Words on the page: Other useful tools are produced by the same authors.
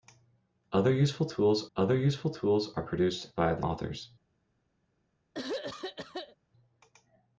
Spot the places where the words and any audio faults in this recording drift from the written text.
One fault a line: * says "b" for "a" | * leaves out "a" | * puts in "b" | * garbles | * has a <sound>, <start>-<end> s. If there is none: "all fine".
* puts in "other useful tools"
* leaves out "same"
* has a throat clearing, 5.3-6.4 s